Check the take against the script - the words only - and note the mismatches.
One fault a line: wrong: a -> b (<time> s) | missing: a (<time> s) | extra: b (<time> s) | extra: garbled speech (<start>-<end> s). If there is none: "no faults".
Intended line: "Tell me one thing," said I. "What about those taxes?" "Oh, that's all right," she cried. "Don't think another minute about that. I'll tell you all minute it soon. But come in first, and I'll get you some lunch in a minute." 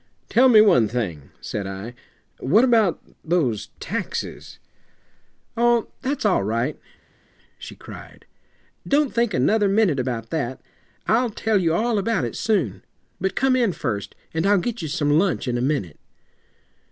wrong: minute -> about (12.0 s)